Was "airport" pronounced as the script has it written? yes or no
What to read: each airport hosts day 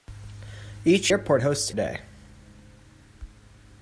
yes